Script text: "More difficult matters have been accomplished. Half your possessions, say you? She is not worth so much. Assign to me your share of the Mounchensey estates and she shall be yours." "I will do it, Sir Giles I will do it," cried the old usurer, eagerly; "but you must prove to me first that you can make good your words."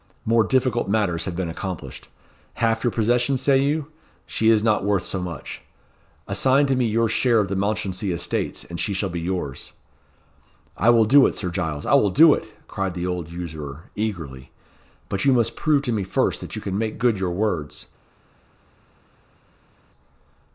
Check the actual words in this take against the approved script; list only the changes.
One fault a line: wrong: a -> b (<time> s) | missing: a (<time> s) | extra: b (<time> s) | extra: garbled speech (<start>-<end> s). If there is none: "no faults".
no faults